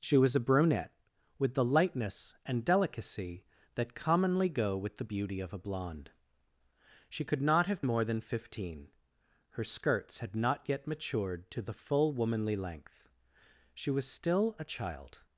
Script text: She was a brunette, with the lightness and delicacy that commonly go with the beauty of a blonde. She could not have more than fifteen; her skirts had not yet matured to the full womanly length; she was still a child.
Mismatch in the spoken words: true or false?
false